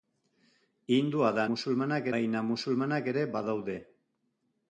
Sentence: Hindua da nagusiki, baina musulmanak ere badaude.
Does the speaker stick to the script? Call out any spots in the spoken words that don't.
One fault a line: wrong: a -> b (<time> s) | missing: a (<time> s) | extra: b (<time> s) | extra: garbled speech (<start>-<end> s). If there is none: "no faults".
wrong: nagusiki -> musulmanak (1.5 s)